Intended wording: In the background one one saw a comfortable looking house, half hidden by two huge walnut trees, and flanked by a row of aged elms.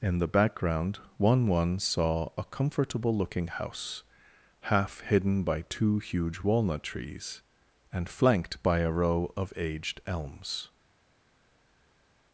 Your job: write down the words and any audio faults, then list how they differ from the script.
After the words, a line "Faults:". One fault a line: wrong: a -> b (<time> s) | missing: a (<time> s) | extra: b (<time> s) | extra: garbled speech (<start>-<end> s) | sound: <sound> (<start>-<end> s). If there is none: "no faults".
In the background one one saw a comfortable looking house, half hidden by two huge walnut trees, and flanked by a row of aged elms.
Faults:
no faults